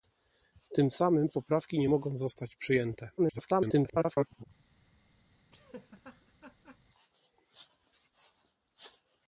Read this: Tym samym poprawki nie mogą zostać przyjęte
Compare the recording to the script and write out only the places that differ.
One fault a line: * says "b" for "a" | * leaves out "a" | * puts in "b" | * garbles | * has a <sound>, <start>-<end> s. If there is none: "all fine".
* garbles
* has a laugh, 5.5-6.8 s